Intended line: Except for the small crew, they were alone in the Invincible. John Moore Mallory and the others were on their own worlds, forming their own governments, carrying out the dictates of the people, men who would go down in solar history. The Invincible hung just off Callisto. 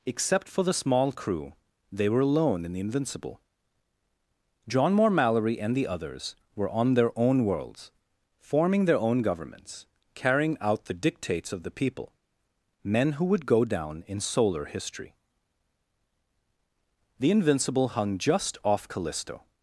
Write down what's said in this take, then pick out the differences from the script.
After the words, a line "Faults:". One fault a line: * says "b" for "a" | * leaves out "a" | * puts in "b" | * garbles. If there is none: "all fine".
Except for the small crew, they were alone in the Invincible. John Moore Mallory and the others were on their own worlds, forming their own governments, carrying out the dictates of the people, men who would go down in solar history. The Invincible hung just off Callisto.
Faults:
all fine